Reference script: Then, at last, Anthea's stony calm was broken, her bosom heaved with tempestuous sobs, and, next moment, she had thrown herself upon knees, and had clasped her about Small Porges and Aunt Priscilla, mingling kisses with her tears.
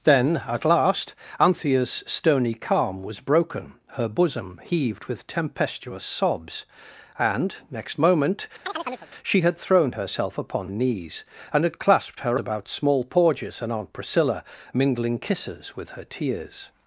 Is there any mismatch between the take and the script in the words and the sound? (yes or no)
yes